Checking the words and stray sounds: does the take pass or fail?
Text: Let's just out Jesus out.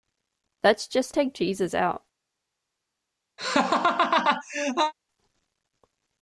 fail